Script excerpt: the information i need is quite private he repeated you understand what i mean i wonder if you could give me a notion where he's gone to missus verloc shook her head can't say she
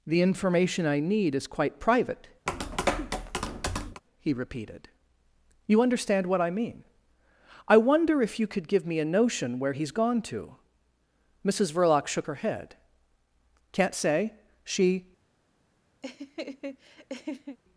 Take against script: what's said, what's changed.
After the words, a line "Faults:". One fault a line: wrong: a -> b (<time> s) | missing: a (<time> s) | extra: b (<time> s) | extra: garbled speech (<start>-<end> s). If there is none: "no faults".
the information i need is quite private he repeated you understand what i mean i wonder if you could give me a notion where he's gone to missus verloc shook her head can't say she
Faults:
no faults